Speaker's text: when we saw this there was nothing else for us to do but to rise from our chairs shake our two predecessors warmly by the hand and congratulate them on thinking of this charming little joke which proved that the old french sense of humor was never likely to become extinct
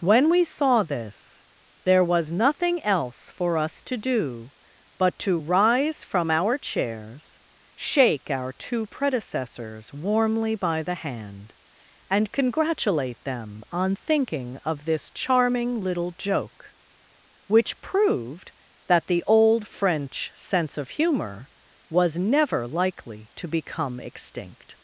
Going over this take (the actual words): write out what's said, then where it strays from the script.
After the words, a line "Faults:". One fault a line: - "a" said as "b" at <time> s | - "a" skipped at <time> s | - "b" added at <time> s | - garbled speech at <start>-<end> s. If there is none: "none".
when we saw this there was nothing else for us to do but to rise from our chairs shake our two predecessors warmly by the hand and congratulate them on thinking of this charming little joke which proved that the old french sense of humor was never likely to become extinct
Faults:
none